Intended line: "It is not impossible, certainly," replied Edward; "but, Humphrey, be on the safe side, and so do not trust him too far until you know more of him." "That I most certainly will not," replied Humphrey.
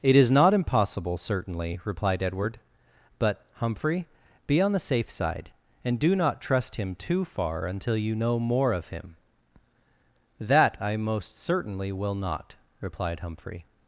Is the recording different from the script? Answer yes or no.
yes